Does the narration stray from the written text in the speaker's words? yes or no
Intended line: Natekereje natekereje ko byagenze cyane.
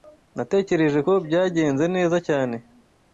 yes